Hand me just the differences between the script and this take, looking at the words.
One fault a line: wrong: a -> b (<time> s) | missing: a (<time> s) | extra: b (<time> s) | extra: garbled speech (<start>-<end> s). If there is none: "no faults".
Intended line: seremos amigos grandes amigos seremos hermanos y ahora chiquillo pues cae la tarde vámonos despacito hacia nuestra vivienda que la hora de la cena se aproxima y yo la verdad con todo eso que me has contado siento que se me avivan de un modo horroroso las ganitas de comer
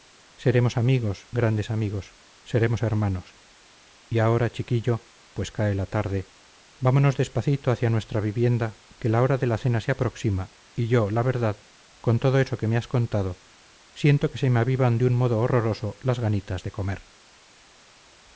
no faults